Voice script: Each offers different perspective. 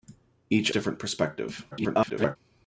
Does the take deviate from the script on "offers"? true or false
true